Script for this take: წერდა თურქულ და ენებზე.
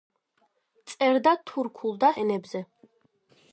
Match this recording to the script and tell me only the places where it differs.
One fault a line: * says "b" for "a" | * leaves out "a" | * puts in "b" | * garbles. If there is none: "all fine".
all fine